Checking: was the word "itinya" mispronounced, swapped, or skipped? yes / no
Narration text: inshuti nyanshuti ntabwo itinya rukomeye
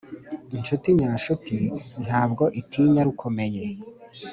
no